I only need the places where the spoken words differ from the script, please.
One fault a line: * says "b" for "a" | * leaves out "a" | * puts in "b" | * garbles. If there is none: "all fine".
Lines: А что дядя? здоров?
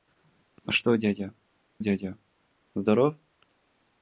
* puts in "дядя"